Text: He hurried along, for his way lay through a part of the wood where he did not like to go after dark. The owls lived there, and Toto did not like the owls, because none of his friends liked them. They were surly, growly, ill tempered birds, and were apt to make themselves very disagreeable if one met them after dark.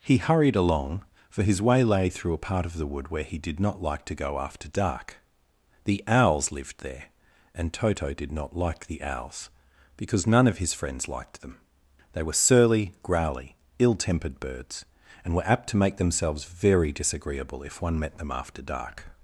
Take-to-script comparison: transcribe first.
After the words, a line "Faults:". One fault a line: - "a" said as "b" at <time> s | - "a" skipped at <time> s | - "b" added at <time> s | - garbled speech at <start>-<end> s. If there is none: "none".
He hurried along, for his way lay through a part of the wood where he did not like to go after dark. The owls lived there, and Toto did not like the owls, because none of his friends liked them. They were surly, growly, ill tempered birds, and were apt to make themselves very disagreeable if one met them after dark.
Faults:
none